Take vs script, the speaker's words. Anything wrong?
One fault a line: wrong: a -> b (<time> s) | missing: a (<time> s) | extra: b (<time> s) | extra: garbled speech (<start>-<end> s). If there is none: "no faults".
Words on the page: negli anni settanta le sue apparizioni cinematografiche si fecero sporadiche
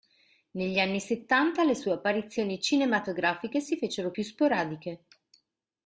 extra: più (4.1 s)